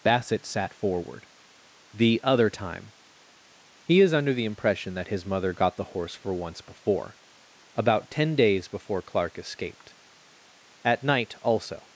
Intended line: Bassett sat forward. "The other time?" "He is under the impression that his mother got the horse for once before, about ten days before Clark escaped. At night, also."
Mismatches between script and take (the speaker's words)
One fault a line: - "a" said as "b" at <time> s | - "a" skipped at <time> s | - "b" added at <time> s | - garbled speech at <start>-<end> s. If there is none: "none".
none